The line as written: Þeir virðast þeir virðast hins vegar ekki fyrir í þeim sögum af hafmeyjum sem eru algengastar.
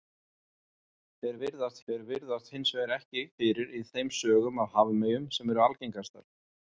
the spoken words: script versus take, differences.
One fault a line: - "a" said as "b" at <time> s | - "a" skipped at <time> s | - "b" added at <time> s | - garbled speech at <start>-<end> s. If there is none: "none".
none